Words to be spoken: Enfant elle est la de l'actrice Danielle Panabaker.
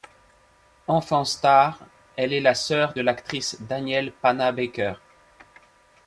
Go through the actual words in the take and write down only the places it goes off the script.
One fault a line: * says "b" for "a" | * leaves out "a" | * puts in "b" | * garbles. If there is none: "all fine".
* puts in "star"
* puts in "sœur"